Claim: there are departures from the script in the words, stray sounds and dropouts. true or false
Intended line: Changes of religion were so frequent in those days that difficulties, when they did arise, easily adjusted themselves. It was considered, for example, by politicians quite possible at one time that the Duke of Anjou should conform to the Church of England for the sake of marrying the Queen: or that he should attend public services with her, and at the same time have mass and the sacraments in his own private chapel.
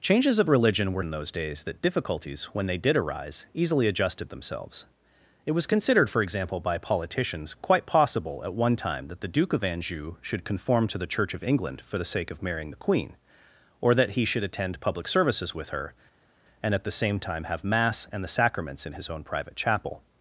true